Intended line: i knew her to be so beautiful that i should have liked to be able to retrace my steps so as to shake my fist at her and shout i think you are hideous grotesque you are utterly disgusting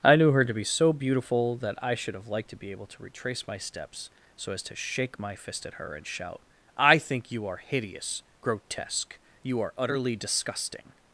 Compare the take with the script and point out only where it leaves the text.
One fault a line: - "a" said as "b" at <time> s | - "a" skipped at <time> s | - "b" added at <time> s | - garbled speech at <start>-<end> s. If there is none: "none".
none